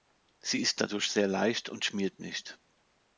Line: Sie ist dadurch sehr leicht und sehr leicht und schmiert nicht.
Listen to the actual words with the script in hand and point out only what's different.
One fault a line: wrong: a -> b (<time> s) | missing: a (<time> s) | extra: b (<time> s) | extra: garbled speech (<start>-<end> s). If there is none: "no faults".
missing: sehr leicht und (1.9 s)